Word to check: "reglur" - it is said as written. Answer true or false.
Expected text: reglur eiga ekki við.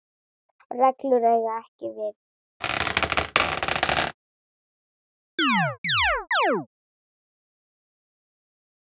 true